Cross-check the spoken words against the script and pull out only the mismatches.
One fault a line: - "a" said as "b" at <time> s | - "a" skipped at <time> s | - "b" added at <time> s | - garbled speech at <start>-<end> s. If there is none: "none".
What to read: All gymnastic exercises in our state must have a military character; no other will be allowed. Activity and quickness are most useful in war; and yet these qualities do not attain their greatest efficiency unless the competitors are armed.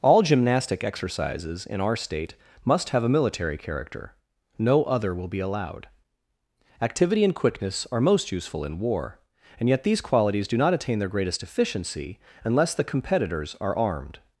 none